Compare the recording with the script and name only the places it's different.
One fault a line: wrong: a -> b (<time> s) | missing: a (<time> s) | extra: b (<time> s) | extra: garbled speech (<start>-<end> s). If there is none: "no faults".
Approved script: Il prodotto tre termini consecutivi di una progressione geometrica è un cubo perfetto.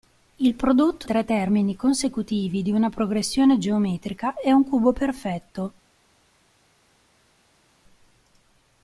no faults